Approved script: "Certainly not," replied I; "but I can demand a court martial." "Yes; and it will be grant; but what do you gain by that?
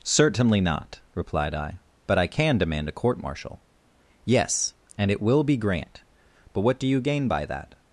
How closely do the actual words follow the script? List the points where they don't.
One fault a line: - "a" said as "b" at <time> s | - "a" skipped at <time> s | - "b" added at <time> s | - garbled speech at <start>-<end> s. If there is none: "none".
none